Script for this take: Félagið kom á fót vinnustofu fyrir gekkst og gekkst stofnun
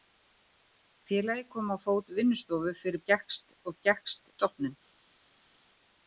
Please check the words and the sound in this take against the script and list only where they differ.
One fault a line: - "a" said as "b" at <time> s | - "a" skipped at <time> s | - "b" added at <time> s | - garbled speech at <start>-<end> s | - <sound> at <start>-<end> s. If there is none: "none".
none